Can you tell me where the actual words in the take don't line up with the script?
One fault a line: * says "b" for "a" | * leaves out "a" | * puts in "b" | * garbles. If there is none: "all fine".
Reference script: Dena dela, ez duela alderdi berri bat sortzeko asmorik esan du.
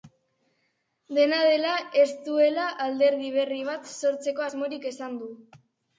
all fine